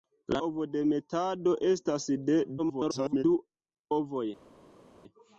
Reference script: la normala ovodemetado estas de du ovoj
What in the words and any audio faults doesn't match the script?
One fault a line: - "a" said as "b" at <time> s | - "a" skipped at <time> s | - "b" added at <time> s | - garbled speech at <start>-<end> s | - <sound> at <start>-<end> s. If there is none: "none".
- "normala" skipped at 0.4 s
- garbled speech at 2.6-3.2 s